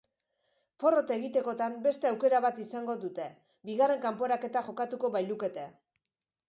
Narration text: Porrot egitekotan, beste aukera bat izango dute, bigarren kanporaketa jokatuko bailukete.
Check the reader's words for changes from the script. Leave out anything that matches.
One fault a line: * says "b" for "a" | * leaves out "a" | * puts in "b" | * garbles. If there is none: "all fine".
all fine